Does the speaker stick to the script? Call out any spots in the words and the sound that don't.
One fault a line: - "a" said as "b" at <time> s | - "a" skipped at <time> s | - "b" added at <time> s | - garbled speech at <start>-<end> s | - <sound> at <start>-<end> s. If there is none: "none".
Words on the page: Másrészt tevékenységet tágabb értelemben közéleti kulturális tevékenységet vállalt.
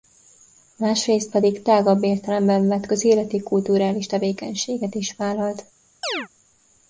- "tevékenységet" said as "pedig" at 1.3 s
- "vett" added at 2.7 s
- "is" added at 4.9 s
- chirp at 6.0-6.3 s